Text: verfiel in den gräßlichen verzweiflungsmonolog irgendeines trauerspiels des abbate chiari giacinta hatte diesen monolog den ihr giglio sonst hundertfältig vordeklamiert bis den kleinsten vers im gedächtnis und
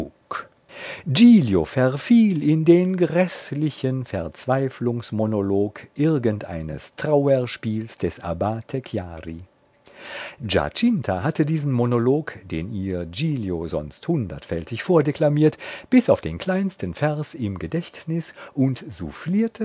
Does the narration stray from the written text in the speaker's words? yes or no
yes